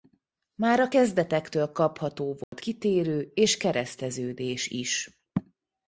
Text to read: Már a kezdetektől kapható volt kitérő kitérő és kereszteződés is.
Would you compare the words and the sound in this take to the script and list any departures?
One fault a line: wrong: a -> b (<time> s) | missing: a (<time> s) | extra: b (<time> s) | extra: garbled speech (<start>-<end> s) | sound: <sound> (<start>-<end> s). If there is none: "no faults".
sound: dropout (2.4-2.5 s)
missing: kitérő (3.3 s)